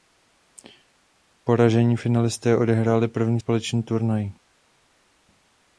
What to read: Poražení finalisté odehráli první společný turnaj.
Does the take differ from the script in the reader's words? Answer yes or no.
no